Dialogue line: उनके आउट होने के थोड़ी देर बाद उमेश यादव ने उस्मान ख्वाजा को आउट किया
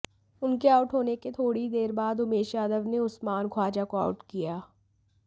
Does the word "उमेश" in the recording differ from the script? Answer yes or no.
no